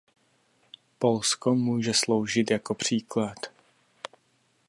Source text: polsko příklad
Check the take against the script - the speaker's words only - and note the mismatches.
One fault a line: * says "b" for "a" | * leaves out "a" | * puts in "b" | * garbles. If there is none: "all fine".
* puts in "může sloužit jako"